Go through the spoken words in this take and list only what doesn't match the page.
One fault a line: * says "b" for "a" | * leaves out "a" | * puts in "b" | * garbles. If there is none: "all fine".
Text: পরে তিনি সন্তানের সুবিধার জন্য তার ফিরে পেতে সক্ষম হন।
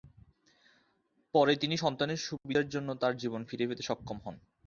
* puts in "জীবন"